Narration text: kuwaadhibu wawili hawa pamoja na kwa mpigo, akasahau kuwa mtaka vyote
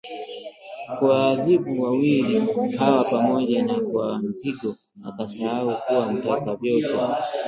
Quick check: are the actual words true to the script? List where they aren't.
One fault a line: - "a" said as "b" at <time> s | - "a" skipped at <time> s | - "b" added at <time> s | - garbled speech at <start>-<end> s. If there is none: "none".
none